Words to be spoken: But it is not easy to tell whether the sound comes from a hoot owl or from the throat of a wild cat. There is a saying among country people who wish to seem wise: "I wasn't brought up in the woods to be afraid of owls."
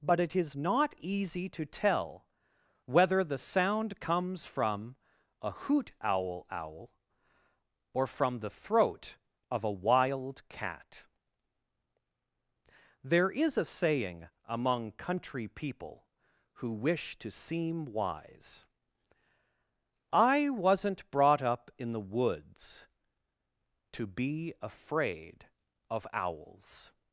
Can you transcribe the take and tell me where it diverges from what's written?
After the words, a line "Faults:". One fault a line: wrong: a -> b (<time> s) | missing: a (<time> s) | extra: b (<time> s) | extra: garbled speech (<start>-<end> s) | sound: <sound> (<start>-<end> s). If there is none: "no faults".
But it is not easy to tell whether the sound comes from a hoot owl owl or from the throat of a wild cat. There is a saying among country people who wish to seem wise: "I wasn't brought up in the woods to be afraid of owls."
Faults:
extra: owl (6.5 s)